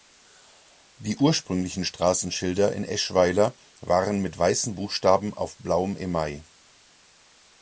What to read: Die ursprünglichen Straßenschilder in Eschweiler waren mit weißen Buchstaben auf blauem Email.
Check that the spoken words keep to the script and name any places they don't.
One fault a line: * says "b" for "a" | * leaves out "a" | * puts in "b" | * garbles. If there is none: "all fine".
all fine